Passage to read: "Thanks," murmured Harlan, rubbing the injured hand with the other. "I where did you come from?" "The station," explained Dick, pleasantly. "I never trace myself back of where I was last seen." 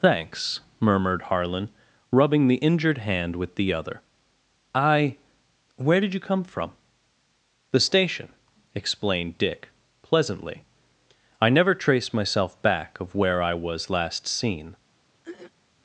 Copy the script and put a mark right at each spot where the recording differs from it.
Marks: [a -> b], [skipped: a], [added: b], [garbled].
"Thanks," murmured Harlan, rubbing the injured hand with the other. "I where did you come from?" "The station," explained Dick, pleasantly. "I never trace myself back of where I was last seen."